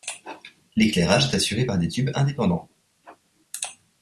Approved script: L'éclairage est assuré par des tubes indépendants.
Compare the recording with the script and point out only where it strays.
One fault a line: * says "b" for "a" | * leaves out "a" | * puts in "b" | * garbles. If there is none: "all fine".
all fine